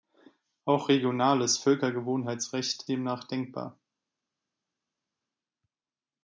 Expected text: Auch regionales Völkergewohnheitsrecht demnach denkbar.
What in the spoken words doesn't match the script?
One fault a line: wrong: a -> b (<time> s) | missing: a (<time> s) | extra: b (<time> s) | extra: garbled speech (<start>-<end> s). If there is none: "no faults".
no faults